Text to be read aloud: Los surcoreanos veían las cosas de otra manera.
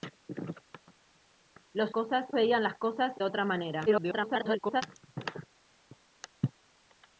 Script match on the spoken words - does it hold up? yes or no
no